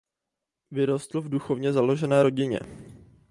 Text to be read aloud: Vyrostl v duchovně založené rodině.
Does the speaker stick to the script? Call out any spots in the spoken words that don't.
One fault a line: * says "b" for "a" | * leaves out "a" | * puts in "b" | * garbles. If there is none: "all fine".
all fine